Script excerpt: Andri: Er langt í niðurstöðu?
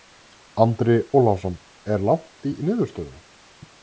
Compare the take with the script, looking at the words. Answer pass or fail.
fail